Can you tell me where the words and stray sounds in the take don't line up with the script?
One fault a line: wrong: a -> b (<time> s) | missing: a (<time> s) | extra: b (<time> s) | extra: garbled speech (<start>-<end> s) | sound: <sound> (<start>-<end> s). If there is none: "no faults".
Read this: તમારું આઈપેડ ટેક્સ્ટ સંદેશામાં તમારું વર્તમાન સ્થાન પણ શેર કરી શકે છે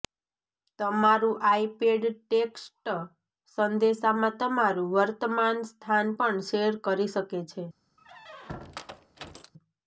sound: squeak (8.0-9.5 s)